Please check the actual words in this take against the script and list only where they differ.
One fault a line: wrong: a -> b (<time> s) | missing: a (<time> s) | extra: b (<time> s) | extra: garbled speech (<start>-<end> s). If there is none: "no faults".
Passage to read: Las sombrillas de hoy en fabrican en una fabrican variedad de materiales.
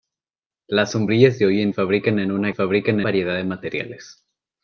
no faults